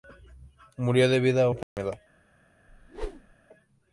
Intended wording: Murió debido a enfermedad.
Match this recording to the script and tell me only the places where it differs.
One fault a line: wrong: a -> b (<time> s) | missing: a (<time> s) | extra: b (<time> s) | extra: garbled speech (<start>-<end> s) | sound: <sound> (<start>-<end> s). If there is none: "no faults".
sound: dropout (1.6-1.8 s)
sound: whoosh (2.7-3.4 s)